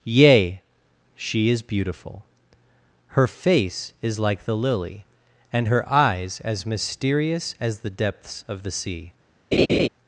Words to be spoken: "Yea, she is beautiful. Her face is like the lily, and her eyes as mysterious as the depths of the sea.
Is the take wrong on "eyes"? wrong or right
right